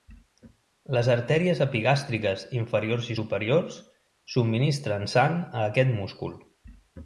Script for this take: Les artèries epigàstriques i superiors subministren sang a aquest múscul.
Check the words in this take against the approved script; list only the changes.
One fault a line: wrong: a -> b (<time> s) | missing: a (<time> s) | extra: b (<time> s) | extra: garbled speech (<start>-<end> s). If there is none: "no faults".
extra: inferiors (2.6 s)